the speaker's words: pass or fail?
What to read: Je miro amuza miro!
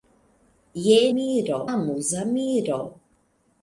pass